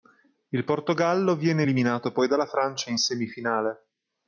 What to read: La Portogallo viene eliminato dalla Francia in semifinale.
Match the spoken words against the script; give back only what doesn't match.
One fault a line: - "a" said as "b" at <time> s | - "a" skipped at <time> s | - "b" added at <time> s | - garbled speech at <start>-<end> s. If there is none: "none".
- "La" said as "Il" at 0.5 s
- "poi" added at 2.1 s